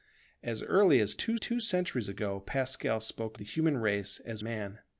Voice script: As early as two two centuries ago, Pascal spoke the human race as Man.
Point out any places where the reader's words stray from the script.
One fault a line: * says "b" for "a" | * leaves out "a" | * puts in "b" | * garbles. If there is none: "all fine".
all fine